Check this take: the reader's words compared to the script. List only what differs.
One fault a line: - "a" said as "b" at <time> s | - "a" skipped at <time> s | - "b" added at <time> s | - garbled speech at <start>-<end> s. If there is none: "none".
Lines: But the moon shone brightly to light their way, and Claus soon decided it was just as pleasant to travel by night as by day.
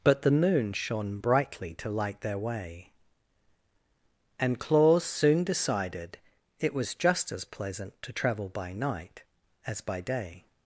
none